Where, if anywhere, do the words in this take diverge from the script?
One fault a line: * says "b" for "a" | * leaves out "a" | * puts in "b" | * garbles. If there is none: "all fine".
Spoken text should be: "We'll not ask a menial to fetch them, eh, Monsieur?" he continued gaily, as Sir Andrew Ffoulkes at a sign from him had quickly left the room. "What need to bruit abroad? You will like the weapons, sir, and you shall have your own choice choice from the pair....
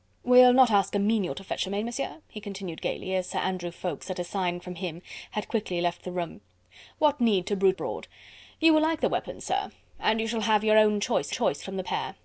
all fine